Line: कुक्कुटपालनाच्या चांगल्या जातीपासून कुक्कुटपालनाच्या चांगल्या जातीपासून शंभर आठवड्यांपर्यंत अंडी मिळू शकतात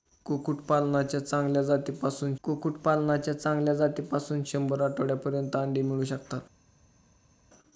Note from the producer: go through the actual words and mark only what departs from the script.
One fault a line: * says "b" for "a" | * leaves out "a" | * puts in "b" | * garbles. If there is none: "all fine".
all fine